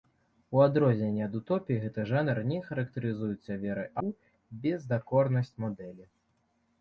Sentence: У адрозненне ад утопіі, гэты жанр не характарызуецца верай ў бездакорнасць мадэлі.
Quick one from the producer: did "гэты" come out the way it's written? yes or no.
yes